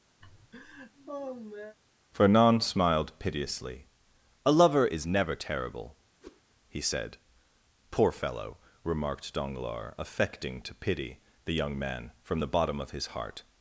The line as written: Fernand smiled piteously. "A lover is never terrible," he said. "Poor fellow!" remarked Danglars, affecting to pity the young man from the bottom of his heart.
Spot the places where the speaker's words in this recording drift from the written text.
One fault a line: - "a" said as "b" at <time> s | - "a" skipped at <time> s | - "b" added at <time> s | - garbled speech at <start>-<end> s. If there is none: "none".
none